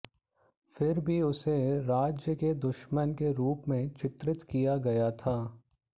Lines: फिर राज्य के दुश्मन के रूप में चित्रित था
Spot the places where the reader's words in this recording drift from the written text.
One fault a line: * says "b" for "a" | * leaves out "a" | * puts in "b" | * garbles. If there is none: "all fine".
* puts in "भी उसे"
* puts in "किया गया"